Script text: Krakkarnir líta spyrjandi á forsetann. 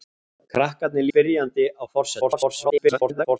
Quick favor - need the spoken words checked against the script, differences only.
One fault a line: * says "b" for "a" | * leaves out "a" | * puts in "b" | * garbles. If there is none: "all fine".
* leaves out "líta"
* garbles